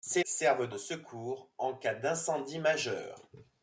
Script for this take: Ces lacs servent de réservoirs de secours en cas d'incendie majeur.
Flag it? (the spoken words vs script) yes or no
yes